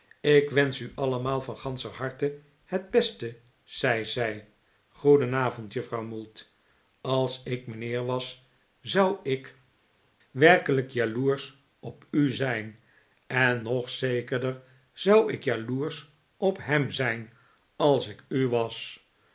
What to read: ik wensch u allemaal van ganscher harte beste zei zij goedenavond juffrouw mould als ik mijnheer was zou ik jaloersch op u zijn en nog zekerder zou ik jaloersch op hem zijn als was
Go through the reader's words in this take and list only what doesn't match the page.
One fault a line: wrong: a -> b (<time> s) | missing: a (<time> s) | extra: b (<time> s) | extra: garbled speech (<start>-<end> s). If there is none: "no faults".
extra: het (2.6 s)
extra: werkelijk (10.3 s)
extra: ik u (18.1 s)